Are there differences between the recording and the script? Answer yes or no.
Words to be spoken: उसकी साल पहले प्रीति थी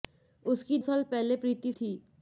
no